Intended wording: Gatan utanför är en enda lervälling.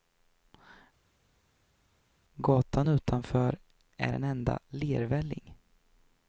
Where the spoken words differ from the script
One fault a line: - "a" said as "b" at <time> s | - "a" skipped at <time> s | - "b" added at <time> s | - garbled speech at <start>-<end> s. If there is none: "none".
none